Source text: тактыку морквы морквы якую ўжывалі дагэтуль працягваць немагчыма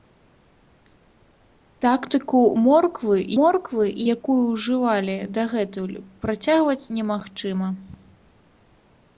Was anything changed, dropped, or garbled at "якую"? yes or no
no